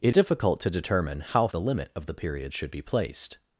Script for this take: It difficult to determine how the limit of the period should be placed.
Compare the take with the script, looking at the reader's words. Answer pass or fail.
pass